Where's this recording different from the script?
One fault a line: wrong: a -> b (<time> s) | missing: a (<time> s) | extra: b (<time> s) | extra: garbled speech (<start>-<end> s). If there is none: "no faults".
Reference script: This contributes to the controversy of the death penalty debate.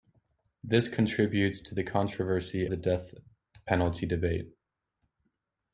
missing: of (2.7 s)